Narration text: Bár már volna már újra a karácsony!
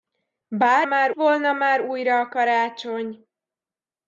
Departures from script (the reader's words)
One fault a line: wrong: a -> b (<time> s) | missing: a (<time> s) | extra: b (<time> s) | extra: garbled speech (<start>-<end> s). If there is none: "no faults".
no faults